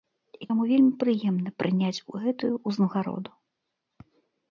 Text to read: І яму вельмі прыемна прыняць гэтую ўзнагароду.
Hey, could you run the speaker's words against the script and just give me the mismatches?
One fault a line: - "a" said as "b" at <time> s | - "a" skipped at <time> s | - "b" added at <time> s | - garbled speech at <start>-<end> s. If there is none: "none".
none